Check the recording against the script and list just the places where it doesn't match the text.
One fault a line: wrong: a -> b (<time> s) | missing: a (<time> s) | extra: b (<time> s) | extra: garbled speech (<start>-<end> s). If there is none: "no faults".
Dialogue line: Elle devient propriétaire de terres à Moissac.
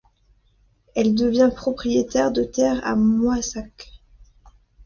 no faults